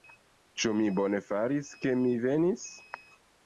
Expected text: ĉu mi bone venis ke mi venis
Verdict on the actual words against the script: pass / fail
fail